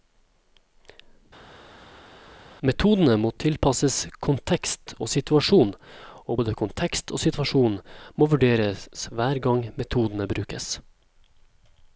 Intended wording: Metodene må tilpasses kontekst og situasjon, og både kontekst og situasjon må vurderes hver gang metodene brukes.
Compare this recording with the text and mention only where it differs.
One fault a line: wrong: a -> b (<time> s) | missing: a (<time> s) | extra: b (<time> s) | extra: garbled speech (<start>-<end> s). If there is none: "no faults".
no faults